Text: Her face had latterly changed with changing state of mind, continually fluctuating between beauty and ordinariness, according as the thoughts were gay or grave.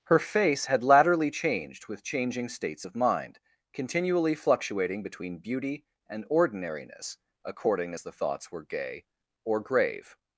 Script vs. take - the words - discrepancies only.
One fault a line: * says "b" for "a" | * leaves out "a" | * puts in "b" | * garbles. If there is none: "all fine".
* says "states" for "state"